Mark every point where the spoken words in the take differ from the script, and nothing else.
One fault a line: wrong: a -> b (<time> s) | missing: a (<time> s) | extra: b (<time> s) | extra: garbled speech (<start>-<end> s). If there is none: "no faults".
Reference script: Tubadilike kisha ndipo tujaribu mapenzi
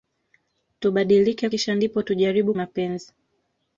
no faults